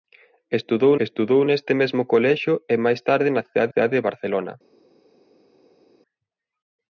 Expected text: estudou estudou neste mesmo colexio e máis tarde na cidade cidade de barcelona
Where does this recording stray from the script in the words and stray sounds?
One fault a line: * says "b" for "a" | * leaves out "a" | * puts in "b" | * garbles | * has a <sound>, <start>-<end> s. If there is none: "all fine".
all fine